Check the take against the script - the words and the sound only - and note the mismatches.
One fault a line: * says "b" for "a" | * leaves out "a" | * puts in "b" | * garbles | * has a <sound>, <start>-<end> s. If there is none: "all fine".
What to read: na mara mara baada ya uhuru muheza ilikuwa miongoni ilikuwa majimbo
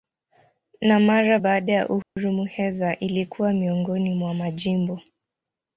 * leaves out "mara"
* has a dropout, 2.0-2.2 s
* says "mwa" for "ilikuwa"